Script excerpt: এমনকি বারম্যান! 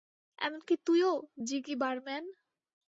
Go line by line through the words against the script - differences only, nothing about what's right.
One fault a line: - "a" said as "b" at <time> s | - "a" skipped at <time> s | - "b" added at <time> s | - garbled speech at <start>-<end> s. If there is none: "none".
- "তুইও জিগি" added at 0.8 s